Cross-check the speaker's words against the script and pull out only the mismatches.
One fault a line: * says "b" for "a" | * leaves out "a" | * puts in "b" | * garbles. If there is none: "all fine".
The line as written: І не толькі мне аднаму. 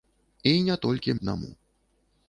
* leaves out "мне"